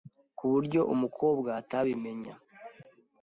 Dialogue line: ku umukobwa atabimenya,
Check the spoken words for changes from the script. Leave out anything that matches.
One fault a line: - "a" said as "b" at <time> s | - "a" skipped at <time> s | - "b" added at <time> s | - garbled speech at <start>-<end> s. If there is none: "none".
- "buryo" added at 0.5 s